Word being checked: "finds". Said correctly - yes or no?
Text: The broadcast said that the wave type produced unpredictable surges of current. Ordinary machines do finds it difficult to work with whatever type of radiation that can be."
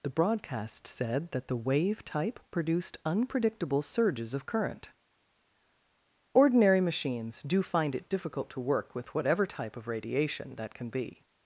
no